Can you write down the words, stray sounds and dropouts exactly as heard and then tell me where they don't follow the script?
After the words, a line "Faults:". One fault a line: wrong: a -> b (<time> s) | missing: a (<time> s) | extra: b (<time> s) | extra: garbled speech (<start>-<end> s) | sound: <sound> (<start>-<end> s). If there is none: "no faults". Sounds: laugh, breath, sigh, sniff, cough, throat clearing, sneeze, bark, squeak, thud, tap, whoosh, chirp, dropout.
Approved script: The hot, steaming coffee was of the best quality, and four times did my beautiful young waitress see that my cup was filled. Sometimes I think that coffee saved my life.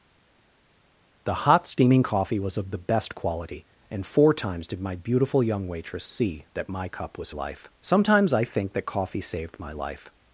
The hot, steaming coffee was of the best quality, and four times did my beautiful young waitress see that my cup was life. Sometimes I think that coffee saved my life.
Faults:
wrong: filled -> life (7.3 s)